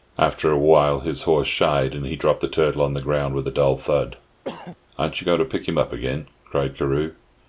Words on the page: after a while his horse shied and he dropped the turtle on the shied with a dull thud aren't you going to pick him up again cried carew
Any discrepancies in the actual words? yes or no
yes